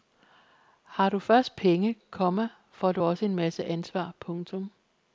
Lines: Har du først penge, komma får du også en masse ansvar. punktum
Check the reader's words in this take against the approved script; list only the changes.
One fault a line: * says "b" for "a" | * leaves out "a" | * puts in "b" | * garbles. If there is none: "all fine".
all fine